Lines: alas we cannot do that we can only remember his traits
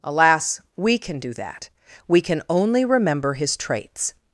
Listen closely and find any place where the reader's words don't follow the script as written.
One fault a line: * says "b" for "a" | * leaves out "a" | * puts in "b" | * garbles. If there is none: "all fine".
* says "can" for "cannot"